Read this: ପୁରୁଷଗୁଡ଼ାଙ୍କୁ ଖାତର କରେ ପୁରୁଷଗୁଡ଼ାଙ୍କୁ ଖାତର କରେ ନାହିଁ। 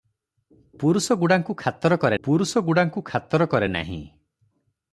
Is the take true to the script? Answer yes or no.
yes